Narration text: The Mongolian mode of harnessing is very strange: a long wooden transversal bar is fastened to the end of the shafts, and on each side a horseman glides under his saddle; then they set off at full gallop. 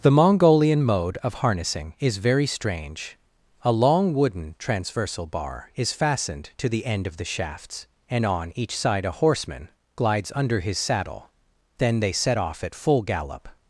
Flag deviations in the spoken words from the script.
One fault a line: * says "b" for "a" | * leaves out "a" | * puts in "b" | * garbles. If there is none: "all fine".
all fine